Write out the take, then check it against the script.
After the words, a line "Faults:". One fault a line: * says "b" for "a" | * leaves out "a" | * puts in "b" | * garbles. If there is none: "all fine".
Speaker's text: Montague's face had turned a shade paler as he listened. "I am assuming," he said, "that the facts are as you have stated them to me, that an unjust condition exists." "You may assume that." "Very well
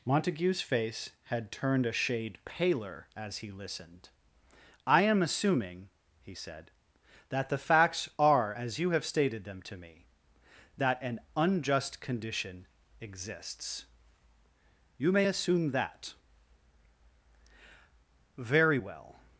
Montague's face had turned a shade paler as he listened. "I am assuming," he said, "that the facts are as you have stated them to me, that an unjust condition exists." "You may assume that." "Very well
Faults:
all fine